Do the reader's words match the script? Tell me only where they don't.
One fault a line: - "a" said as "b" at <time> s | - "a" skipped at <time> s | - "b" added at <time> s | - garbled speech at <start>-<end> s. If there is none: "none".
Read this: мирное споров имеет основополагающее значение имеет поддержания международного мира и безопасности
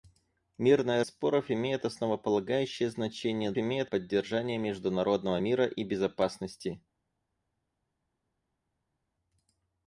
none